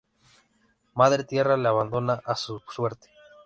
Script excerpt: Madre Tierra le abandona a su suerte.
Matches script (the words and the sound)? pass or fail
pass